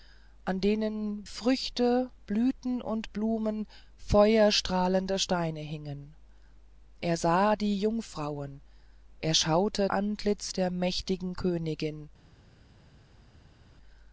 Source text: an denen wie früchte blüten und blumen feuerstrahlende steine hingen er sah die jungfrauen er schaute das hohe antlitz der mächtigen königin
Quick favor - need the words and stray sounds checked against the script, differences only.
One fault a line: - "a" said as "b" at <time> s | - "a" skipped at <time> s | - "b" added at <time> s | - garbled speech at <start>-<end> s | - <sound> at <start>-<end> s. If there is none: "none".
- "wie" skipped at 1.3 s
- "das hohe" skipped at 9.9 s